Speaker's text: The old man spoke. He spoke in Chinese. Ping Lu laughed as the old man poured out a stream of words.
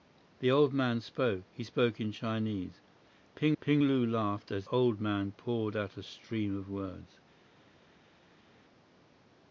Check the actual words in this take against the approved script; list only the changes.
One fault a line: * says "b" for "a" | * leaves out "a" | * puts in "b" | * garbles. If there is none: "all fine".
* puts in "ping"
* leaves out "the"